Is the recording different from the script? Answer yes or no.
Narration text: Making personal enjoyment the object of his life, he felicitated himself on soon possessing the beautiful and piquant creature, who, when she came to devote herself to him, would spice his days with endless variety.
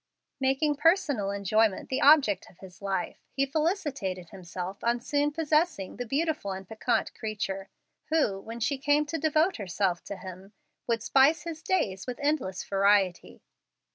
no